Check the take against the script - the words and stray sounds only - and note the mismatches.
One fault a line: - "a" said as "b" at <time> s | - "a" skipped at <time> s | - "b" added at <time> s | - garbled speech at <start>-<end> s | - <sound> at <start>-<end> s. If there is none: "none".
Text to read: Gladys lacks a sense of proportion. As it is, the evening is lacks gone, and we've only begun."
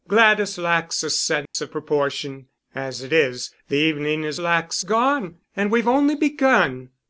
- dropout at 1.5-1.5 s